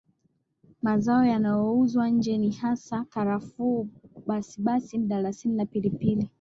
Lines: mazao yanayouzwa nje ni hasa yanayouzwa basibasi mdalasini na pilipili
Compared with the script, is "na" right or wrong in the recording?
right